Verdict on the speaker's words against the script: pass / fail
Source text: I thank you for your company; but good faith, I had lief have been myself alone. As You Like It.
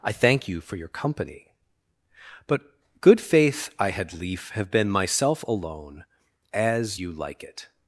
pass